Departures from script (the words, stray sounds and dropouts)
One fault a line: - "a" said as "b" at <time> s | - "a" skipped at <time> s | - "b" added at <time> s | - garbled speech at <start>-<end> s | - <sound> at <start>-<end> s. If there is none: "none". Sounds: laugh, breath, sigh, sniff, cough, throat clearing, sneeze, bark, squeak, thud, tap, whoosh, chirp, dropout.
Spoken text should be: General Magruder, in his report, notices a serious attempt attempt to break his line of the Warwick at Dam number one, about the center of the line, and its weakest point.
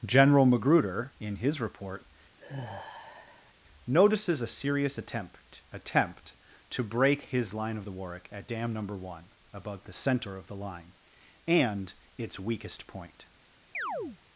- sigh at 2.4-3.5 s
- chirp at 13.7-14.2 s